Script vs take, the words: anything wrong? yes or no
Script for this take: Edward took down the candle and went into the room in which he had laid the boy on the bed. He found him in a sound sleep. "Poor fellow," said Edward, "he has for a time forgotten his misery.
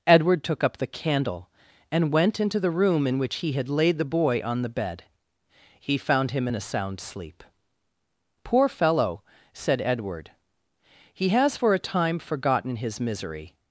yes